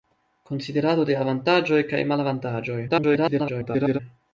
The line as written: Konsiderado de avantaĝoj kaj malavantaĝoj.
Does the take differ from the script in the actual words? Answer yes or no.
yes